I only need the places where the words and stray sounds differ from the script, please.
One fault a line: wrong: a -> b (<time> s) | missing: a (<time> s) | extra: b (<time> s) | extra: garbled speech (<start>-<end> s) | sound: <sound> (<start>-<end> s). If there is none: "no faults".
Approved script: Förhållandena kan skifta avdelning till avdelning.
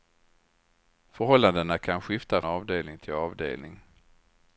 no faults